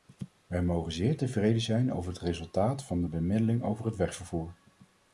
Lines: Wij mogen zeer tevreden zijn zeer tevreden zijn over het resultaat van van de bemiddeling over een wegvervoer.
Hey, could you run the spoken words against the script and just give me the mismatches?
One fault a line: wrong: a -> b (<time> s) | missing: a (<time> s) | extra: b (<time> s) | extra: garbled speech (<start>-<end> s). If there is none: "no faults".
missing: zeer tevreden zijn (1.9 s)
missing: van (3.0 s)
wrong: een -> het (3.8 s)